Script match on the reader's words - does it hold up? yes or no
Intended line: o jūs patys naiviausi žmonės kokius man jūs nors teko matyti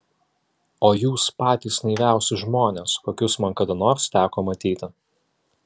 no